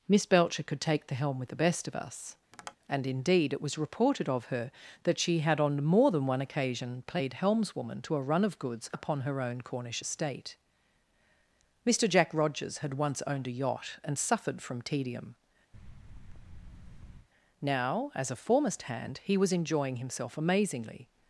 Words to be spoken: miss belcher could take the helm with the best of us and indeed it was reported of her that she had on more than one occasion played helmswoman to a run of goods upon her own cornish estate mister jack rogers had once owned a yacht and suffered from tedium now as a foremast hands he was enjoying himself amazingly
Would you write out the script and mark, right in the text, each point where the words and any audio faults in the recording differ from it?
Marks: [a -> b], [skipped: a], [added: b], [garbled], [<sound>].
miss belcher could take the helm with the best of us [tap] and indeed it was reported of her that she had on more than one occasion played helmswoman to a run of goods upon her own cornish estate mister jack rogers had once owned a yacht and suffered from tedium [thud] now as a foremast [hands -> hand] he was enjoying himself amazingly